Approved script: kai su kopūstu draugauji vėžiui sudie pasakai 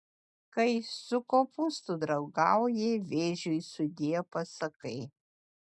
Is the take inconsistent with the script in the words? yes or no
no